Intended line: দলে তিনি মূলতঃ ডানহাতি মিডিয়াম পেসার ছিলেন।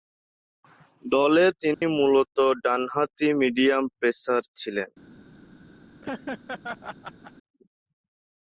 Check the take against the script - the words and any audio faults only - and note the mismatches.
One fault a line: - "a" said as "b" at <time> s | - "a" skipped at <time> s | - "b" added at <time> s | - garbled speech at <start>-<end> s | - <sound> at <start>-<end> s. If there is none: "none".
- dropout at 1.7-1.8 s
- laugh at 6.0-7.3 s